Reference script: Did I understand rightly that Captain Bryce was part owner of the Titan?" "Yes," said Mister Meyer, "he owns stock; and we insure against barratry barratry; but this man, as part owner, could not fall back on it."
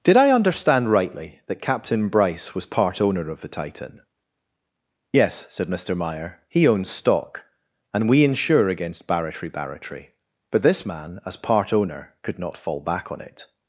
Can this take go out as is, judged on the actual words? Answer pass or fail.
pass